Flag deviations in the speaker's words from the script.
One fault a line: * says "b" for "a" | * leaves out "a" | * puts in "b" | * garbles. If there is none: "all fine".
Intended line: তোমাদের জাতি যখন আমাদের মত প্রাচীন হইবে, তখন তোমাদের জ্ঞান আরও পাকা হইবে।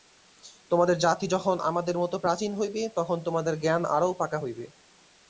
all fine